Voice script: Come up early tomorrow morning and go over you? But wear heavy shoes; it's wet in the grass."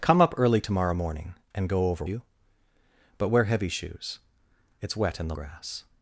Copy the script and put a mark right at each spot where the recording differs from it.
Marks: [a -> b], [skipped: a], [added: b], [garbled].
Come up early tomorrow morning and go over you? But wear heavy shoes; it's wet in the grass."